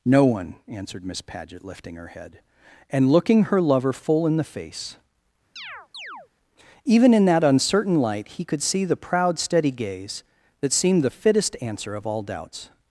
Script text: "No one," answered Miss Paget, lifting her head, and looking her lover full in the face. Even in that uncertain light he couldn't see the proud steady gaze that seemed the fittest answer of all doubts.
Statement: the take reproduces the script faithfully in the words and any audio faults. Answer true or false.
false